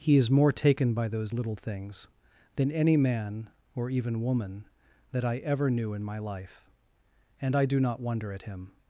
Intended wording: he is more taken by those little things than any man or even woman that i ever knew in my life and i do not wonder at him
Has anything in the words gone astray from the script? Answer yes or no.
no